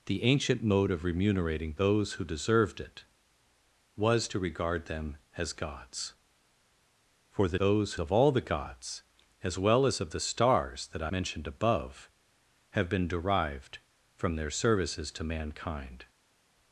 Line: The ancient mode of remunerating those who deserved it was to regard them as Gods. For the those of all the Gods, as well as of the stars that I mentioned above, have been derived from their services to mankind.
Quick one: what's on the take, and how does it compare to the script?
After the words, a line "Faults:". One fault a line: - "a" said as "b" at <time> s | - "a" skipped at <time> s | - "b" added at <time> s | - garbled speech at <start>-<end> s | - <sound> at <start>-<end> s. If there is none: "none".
The ancient mode of remunerating those who deserved it was to regard them as Gods. For the those of all the Gods, as well as of the stars that I mentioned above, have been derived from their services to mankind.
Faults:
none